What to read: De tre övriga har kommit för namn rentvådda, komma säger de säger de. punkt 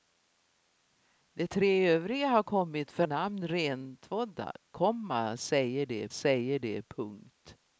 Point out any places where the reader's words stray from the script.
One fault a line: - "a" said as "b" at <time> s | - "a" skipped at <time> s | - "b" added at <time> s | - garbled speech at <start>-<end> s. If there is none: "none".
none